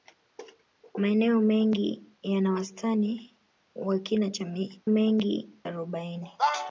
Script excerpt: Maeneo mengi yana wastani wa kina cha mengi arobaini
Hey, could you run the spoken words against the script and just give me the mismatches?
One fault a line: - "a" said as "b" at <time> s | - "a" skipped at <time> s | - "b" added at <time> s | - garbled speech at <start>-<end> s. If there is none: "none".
none